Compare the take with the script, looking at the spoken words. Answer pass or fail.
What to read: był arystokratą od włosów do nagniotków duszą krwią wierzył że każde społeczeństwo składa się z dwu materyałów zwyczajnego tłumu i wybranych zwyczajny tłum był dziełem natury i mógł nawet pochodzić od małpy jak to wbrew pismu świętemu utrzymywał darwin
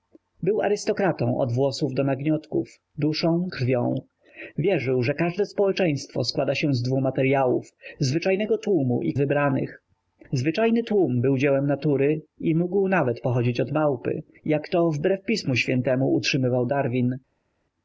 pass